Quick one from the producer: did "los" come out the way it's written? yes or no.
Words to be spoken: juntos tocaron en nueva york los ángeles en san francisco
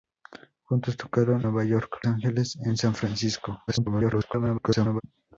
no